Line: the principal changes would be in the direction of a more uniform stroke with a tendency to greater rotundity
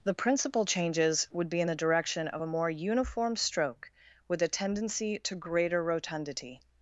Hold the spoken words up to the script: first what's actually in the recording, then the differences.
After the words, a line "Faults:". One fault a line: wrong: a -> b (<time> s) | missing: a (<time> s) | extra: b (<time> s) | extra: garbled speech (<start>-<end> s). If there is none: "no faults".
the principal changes would be in the direction of a more uniform stroke with a tendency to greater rotundity
Faults:
no faults